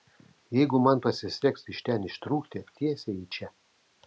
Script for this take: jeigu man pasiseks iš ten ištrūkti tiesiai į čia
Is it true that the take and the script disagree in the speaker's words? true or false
false